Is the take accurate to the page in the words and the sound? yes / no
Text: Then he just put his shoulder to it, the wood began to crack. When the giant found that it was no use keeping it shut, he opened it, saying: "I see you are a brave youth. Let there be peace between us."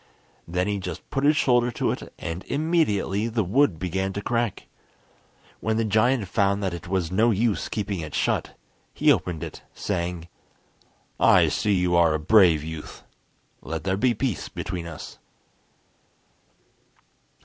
no